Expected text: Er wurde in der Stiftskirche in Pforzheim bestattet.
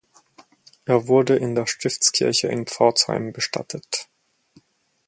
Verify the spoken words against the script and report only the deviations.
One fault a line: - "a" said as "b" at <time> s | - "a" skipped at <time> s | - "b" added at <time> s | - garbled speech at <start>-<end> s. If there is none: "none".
none